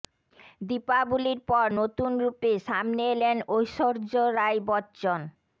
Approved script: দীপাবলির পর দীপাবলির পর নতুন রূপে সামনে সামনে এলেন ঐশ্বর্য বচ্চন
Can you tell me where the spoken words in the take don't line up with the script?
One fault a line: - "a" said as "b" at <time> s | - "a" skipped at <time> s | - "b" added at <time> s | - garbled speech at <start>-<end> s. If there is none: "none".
- "দীপাবলির পর" skipped at 1.7 s
- "সামনে" skipped at 3.0 s
- "রাই" added at 4.4 s